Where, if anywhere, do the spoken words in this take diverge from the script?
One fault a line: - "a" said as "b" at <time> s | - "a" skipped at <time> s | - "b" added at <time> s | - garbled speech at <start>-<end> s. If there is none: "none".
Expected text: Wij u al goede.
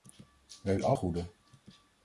none